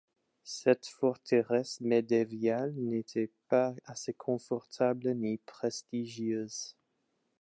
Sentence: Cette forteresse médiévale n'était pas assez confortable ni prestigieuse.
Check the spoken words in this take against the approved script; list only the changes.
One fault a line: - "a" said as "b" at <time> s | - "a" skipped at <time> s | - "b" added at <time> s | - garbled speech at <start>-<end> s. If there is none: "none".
none